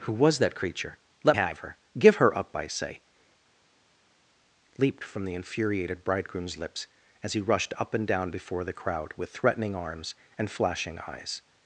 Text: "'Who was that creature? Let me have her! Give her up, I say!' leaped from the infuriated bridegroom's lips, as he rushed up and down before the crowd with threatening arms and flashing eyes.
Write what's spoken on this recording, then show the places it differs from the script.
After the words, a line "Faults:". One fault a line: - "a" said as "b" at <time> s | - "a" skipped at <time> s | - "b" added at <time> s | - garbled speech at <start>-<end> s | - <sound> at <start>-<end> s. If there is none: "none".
"'Who was that creature? Let have her! Give her up, I say!' leaped from the infuriated bridegroom's lips, as he rushed up and down before the crowd with threatening arms and flashing eyes.
Faults:
- "me" skipped at 1.4 s